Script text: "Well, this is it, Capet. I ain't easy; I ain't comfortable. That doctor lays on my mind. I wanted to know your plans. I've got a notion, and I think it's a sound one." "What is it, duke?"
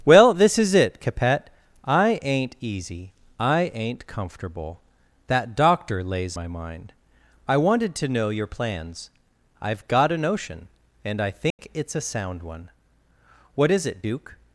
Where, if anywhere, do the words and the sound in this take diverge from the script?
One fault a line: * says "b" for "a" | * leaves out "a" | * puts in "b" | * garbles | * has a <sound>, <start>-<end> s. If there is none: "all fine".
* leaves out "on"
* has a dropout, 11.5-11.6 s